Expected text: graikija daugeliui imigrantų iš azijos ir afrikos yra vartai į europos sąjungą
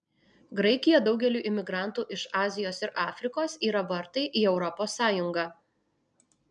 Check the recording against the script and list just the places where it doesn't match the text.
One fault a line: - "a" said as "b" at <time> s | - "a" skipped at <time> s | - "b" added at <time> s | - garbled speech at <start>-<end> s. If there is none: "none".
none